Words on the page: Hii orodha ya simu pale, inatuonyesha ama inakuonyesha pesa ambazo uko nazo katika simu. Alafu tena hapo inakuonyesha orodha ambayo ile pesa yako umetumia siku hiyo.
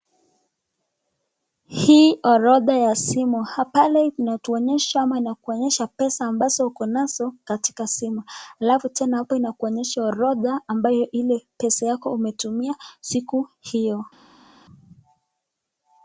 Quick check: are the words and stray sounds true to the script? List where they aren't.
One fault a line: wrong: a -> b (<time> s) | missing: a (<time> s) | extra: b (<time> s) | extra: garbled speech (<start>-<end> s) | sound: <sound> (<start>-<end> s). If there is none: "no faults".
no faults